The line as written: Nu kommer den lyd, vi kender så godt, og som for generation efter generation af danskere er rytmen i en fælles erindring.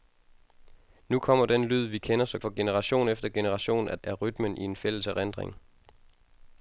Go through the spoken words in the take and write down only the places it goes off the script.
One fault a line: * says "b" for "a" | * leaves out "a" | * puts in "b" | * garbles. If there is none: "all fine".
* leaves out "godt og som"
* leaves out "danskere"